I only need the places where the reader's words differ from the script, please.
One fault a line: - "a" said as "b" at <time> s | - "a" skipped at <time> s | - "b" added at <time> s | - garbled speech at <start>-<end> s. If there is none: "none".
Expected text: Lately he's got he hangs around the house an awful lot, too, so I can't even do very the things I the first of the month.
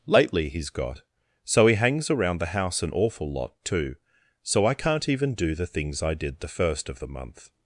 - "so" added at 1.4 s
- "very" skipped at 5.5 s
- "did" added at 6.1 s